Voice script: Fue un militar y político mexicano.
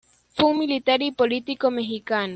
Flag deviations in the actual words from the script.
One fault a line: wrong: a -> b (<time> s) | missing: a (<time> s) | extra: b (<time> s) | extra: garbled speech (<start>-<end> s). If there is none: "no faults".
no faults